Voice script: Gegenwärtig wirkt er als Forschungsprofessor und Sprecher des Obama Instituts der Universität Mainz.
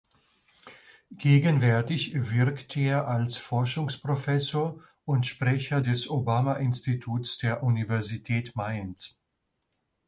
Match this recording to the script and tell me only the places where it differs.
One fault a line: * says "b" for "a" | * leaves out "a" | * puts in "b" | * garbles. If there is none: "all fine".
all fine